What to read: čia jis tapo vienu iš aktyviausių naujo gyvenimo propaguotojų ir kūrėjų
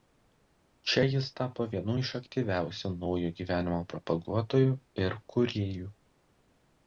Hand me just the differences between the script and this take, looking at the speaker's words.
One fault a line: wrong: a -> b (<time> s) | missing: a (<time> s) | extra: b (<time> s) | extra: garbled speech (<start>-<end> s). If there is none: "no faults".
no faults